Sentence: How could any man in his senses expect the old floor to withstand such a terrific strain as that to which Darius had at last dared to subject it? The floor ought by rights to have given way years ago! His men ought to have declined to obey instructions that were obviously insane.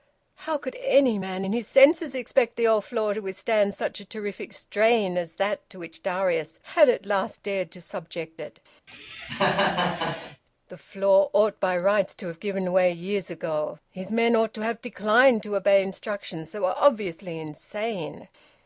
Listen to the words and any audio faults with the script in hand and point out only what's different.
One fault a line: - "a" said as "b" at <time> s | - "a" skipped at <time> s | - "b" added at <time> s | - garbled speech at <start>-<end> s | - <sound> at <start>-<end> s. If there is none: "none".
- cough at 8.9-10.4 s